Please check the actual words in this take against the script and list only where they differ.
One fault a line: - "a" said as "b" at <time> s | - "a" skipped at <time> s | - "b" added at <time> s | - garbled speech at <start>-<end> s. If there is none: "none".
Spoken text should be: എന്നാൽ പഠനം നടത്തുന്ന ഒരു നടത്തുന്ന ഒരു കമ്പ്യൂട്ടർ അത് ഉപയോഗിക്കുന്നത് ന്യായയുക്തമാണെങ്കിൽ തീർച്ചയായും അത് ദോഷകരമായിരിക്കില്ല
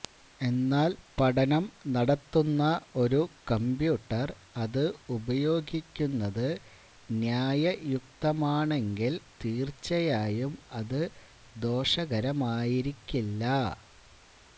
- "നടത്തുന്ന ഒരു" skipped at 3.2 s